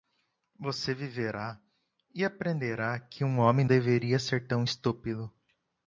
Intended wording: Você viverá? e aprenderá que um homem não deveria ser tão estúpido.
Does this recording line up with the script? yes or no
no